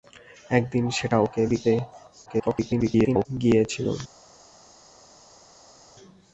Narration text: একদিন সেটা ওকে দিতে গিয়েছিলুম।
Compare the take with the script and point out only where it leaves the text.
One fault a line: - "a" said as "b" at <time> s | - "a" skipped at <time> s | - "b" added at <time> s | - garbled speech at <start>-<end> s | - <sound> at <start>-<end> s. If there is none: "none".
- garbled speech at 2.3-3.3 s